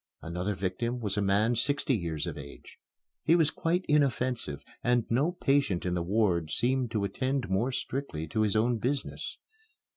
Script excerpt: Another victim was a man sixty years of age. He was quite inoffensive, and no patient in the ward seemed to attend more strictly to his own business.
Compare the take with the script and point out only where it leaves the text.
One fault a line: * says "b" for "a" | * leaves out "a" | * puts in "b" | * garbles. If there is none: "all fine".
all fine